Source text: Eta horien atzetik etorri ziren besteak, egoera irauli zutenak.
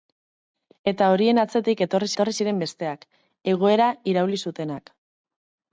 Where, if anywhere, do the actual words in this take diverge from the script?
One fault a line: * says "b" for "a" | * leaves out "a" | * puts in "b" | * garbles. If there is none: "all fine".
* puts in "etorri"